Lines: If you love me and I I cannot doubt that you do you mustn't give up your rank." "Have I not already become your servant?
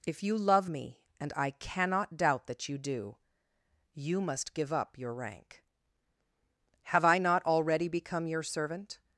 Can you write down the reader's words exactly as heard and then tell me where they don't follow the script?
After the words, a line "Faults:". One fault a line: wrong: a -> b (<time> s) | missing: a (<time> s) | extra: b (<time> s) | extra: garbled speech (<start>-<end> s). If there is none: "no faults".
If you love me and I cannot doubt that you do you must give up your rank." "Have I not already become your servant?
Faults:
missing: I (1.5 s)
wrong: mustn't -> must (4.2 s)